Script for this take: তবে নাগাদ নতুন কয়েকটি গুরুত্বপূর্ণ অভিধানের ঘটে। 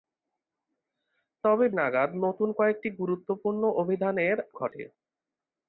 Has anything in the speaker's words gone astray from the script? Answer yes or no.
no